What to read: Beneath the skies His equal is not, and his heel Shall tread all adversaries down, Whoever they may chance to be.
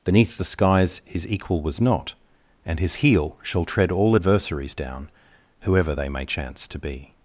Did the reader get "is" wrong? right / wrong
wrong